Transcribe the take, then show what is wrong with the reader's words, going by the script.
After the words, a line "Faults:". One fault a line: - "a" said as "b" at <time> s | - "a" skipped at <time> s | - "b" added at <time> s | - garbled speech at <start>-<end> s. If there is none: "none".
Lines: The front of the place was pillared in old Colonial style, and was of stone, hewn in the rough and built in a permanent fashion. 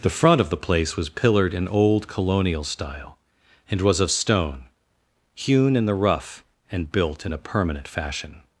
The front of the place was pillared in old Colonial style, and was of stone, hewn in the rough and built in a permanent fashion.
Faults:
none